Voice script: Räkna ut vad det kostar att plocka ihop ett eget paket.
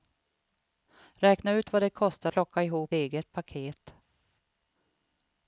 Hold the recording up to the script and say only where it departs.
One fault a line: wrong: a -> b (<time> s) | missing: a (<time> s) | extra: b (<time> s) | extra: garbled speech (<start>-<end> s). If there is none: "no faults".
missing: att (2.3 s)
missing: ett (2.9 s)